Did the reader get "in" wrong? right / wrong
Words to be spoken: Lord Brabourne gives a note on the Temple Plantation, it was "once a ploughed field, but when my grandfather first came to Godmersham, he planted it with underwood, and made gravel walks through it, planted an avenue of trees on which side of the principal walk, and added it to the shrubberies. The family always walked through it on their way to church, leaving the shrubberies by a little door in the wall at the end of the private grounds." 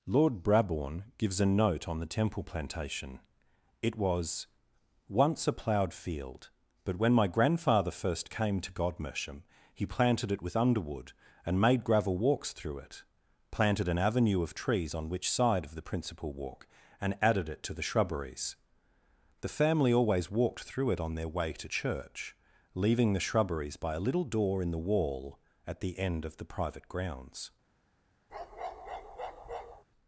right